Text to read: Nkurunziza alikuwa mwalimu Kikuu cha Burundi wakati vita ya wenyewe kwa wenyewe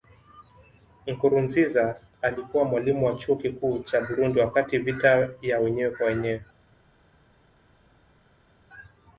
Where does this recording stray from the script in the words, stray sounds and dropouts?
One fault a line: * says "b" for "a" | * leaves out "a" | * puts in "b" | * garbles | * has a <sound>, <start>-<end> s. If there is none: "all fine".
* puts in "wa Chuo"